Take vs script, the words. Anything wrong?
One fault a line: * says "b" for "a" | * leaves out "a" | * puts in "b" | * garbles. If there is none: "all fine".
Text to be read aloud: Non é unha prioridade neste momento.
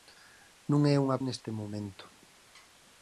* leaves out "prioridade"